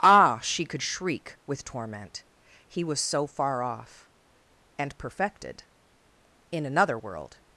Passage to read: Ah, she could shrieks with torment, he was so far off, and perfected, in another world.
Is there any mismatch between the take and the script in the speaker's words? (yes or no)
yes